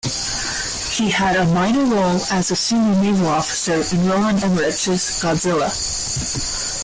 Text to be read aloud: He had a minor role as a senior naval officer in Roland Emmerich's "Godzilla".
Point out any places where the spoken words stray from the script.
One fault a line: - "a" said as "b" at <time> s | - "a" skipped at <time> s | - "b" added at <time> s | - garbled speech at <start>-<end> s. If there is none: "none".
none